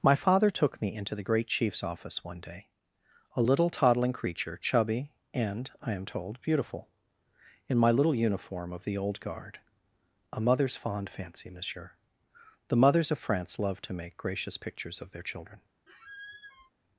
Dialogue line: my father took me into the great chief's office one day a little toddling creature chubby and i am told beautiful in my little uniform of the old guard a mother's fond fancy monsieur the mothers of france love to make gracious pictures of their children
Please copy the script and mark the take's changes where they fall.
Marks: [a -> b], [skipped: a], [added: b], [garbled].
my father took me into the great chief's office one day a little toddling creature chubby and i am told beautiful in my little uniform of the old guard a mother's fond fancy monsieur the mothers of france love to make gracious pictures of their children